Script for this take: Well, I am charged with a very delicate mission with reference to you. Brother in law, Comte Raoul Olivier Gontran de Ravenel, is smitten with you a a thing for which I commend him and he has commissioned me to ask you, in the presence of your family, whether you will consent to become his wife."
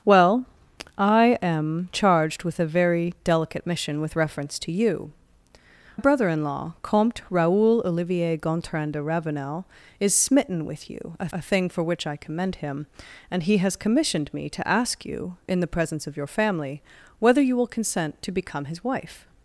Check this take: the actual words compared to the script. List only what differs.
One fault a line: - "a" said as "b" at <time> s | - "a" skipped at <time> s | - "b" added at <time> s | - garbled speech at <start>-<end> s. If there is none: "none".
none